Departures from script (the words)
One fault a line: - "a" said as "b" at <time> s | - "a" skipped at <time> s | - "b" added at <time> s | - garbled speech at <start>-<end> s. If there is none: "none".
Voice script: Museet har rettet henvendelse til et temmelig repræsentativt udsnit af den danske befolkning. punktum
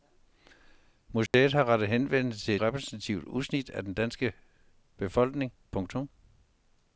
- "et temmelig" skipped at 2.5 s